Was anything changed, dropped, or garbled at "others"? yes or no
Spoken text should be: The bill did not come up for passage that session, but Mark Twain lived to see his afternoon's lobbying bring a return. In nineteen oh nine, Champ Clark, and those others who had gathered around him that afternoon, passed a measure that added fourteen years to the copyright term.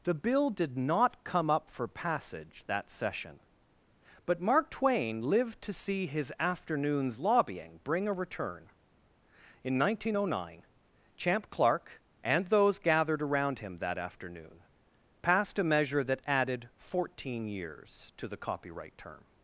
yes